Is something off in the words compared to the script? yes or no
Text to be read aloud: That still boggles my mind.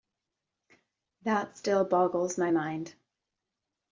no